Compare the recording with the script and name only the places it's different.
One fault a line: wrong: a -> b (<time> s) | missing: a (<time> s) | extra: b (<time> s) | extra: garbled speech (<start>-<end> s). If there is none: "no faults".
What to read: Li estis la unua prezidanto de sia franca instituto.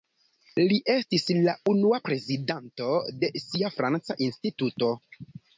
no faults